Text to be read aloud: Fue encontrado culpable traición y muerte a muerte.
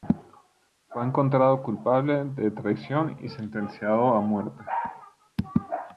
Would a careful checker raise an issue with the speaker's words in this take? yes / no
yes